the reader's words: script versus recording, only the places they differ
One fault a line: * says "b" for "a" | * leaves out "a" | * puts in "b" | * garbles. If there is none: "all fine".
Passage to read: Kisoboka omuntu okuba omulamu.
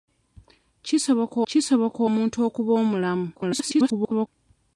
* puts in "kisoboka"
* garbles